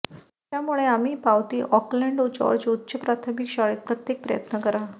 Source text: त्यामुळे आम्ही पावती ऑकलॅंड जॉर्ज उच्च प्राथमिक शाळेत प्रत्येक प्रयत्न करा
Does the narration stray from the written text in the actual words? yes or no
no